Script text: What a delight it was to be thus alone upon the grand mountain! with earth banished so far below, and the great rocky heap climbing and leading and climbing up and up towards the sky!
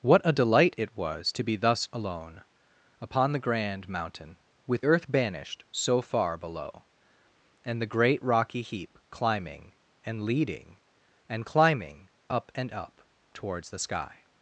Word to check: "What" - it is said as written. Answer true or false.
true